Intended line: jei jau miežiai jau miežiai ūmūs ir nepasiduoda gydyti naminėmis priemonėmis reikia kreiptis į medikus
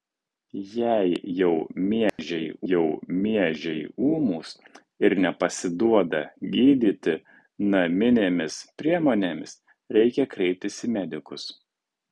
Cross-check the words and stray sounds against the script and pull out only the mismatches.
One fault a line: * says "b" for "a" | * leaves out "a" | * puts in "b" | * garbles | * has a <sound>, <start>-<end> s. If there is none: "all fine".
* has a dropout, 2.1-2.2 s